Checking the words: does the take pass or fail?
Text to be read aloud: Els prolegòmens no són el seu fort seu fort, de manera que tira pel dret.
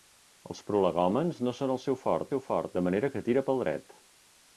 pass